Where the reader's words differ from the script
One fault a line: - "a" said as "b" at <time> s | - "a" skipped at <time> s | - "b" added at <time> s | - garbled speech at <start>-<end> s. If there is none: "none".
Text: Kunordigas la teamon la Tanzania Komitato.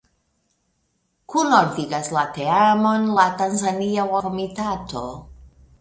none